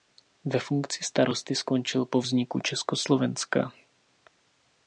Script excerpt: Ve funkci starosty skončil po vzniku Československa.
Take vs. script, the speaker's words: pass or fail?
pass